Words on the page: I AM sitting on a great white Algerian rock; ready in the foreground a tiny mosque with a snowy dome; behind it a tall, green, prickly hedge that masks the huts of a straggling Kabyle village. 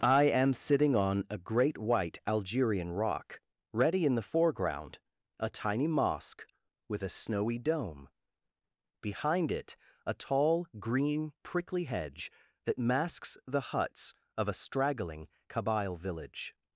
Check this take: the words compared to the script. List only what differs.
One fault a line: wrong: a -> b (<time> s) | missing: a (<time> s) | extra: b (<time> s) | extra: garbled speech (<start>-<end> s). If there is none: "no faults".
no faults